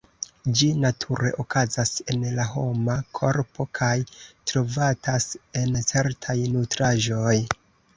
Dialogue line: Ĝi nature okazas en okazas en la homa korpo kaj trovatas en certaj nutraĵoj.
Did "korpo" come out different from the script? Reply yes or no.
no